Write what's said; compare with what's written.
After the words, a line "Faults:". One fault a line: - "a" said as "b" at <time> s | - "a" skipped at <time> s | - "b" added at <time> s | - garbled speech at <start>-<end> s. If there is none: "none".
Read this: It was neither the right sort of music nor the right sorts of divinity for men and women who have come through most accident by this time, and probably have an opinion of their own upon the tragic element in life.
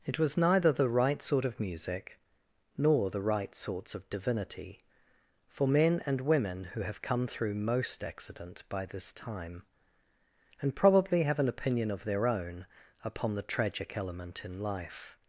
It was neither the right sort of music nor the right sorts of divinity for men and women who have come through most accident by this time, and probably have an opinion of their own upon the tragic element in life.
Faults:
none